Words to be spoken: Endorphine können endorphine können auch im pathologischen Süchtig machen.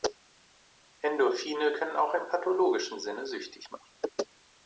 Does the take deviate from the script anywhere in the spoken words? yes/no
yes